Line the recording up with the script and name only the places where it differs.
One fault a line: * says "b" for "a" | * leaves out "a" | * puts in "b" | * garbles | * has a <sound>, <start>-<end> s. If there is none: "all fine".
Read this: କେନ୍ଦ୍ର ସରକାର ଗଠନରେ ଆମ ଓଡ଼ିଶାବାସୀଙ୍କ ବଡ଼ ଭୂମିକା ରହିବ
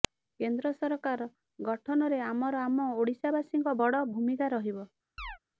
* puts in "ଆମର"
* has a chirp, 5.2-5.4 s